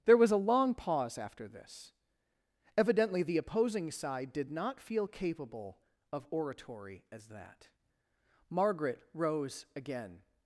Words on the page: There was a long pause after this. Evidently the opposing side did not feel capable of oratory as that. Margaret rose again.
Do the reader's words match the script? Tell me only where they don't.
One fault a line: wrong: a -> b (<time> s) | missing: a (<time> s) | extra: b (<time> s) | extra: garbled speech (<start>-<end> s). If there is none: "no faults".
no faults